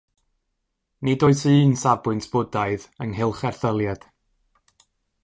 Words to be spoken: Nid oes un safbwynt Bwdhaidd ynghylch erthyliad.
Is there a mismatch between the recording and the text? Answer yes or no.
no